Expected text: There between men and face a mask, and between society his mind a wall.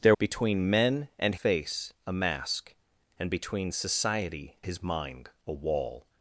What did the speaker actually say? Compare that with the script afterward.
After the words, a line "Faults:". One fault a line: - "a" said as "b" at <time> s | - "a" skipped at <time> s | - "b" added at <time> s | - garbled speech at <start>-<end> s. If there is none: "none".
There between men and face a mask, and between society his mind a wall.
Faults:
none